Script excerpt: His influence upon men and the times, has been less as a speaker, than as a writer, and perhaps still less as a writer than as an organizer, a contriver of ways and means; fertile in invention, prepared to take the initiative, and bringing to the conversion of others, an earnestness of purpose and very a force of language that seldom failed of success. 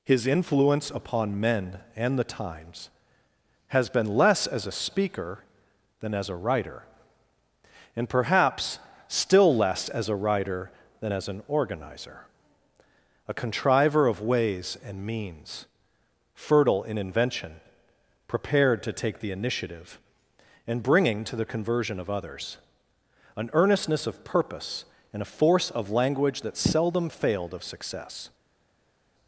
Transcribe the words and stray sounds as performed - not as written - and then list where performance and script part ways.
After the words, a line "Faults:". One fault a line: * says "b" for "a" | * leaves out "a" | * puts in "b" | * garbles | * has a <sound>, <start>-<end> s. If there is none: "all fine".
His influence upon men and the times, has been less as a speaker, than as a writer, and perhaps still less as a writer than as an organizer, a contriver of ways and means; fertile in invention, prepared to take the initiative, and bringing to the conversion of others, an earnestness of purpose and a force of language that seldom failed of success.
Faults:
* leaves out "very"